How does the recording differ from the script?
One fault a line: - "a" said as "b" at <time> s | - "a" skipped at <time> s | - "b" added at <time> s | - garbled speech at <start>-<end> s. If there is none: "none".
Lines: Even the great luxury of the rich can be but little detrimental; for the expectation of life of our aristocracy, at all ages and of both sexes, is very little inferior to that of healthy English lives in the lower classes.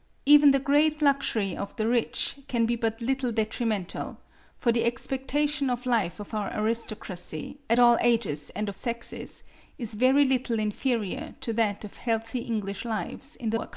- "of both" skipped at 8.7 s
- "lower" skipped at 13.6 s